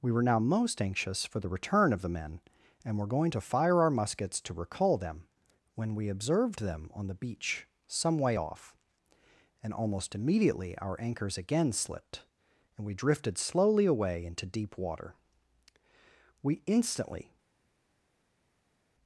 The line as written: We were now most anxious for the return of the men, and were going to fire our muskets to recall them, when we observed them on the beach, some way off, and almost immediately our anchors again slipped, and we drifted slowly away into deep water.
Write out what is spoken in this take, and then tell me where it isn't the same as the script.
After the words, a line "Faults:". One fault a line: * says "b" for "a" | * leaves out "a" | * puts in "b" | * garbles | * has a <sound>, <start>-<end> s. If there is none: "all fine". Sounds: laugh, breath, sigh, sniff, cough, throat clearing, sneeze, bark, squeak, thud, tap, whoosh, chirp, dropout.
We were now most anxious for the return of the men, and were going to fire our muskets to recall them, when we observed them on the beach, some way off, and almost immediately our anchors again slipped, and we drifted slowly away into deep water. We instantly
Faults:
* puts in "We instantly"